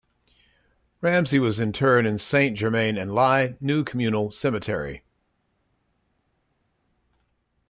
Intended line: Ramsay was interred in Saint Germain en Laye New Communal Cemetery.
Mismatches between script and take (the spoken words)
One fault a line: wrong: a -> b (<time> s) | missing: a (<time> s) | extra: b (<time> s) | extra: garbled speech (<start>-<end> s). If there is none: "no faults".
no faults